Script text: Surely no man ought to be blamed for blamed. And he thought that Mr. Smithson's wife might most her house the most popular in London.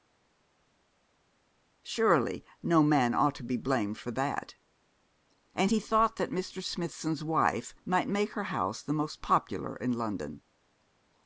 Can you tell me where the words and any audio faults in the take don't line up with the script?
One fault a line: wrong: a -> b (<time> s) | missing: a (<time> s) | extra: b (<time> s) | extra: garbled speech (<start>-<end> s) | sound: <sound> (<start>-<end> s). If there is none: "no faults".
wrong: blamed -> that (4.1 s)
wrong: most -> make (8.1 s)